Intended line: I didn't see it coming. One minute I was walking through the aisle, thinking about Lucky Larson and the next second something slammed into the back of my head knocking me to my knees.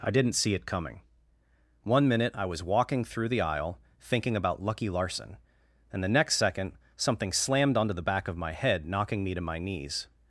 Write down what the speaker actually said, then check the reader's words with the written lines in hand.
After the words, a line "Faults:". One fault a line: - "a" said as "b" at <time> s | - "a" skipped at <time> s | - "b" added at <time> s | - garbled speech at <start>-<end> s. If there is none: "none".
I didn't see it coming. One minute I was walking through the aisle, thinking about Lucky Larson and the next second something slammed onto the back of my head knocking me to my knees.
Faults:
- "into" said as "onto" at 7.8 s